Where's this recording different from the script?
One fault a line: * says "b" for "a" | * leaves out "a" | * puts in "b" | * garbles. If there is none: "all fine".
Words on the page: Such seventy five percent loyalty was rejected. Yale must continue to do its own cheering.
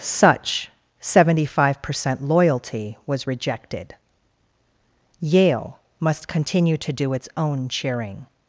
all fine